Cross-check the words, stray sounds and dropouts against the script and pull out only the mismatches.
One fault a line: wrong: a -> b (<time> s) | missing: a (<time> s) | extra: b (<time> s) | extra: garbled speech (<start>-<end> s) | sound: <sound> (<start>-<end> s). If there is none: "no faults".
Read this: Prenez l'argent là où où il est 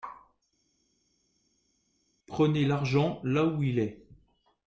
missing: où (3.6 s)